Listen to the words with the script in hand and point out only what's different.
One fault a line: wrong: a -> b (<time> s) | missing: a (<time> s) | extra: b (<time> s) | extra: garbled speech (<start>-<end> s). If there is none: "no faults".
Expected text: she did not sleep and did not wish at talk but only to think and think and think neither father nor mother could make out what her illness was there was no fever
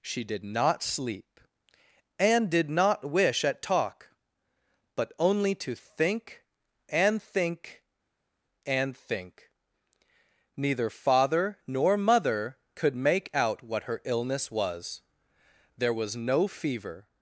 no faults